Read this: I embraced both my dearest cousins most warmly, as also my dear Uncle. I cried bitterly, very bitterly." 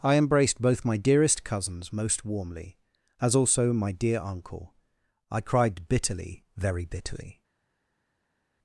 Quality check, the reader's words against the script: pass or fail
pass